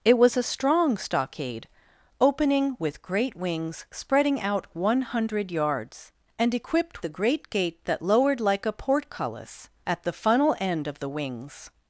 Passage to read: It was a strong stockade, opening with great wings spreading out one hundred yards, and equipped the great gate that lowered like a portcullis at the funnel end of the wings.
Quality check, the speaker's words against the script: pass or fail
pass